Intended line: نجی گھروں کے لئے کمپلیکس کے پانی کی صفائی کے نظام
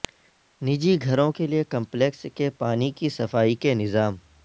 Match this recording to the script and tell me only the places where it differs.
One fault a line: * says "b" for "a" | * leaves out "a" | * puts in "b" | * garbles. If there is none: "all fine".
all fine